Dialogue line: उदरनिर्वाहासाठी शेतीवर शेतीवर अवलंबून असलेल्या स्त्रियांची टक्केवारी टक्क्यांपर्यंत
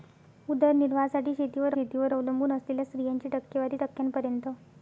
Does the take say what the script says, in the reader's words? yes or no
yes